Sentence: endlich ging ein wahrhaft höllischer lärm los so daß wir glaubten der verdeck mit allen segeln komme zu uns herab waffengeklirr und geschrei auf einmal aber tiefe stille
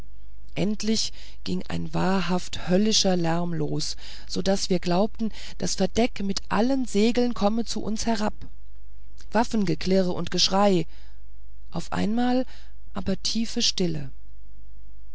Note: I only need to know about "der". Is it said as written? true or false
false